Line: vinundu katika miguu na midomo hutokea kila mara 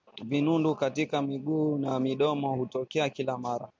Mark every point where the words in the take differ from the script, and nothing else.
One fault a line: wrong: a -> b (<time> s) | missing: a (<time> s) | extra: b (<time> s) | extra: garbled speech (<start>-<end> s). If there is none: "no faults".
no faults